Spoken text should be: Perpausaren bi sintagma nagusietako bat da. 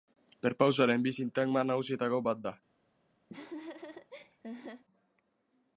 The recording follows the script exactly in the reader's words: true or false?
true